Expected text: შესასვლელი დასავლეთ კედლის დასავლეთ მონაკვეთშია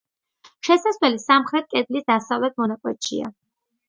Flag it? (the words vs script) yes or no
yes